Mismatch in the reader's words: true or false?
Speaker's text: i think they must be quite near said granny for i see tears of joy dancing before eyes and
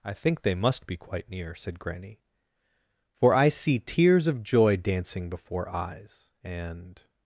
false